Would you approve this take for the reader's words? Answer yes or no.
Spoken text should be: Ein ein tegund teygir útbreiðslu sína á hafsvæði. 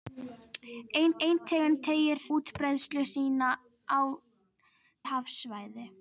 yes